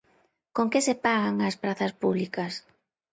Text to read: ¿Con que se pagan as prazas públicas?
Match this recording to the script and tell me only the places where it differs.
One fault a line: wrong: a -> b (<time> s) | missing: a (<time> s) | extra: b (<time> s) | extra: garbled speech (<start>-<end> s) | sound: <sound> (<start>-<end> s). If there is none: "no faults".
no faults